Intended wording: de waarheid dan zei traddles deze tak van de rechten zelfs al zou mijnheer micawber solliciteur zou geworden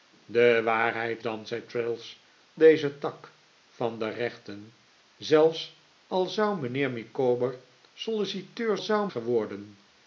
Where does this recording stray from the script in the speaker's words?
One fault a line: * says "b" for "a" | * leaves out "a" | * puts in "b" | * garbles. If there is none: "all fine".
all fine